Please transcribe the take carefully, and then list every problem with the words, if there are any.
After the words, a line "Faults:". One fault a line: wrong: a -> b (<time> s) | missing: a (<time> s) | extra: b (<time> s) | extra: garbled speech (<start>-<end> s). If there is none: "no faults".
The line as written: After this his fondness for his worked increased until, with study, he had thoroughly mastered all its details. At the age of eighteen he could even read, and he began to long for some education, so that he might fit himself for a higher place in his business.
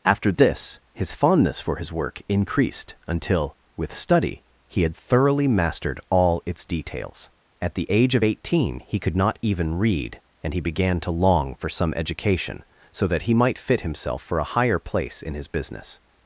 After this his fondness for his work increased until, with study, he had thoroughly mastered all its details. At the age of eighteen he could not even read, and he began to long for some education, so that he might fit himself for a higher place in his business.
Faults:
wrong: worked -> work (1.9 s)
extra: not (9.2 s)